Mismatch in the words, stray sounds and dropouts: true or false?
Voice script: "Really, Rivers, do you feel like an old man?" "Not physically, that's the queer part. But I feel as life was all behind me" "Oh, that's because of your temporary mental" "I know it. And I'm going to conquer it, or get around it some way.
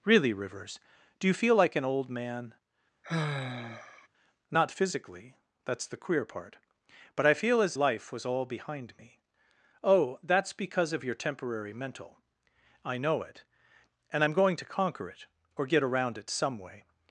true